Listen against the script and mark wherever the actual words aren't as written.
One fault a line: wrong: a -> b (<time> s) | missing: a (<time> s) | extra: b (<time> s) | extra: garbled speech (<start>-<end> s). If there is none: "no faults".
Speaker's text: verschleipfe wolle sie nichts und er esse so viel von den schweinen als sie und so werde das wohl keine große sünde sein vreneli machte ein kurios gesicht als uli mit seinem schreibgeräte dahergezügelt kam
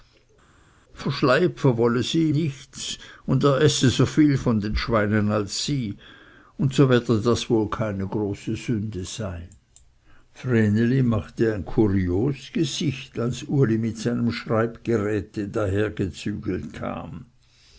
no faults